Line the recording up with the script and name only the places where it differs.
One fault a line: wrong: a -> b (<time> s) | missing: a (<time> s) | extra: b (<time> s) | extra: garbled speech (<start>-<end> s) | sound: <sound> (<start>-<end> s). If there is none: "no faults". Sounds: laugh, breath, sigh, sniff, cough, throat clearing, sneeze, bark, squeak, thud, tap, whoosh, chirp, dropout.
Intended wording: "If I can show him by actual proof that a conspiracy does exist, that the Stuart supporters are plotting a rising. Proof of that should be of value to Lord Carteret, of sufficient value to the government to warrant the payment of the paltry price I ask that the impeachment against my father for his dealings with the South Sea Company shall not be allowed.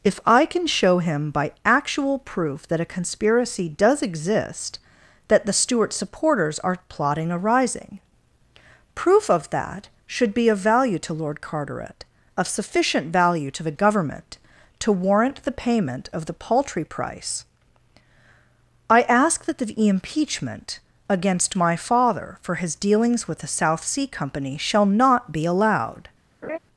sound: laugh (26.4-26.6 s)